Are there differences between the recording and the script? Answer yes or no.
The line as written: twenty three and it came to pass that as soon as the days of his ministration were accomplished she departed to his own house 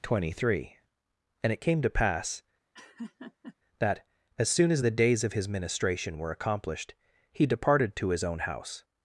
yes